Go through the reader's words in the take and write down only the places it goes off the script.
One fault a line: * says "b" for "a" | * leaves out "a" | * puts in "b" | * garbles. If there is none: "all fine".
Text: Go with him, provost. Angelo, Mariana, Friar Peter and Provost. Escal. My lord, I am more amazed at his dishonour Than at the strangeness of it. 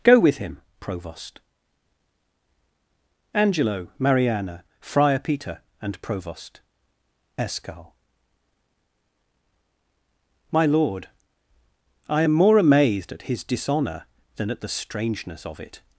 all fine